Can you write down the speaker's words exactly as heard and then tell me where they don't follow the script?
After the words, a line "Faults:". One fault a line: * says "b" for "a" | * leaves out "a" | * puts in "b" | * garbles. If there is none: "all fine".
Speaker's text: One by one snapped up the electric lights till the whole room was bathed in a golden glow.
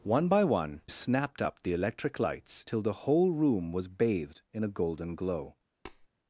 One by one snapped up the electric lights till the whole room was bathed in a golden glow.
Faults:
all fine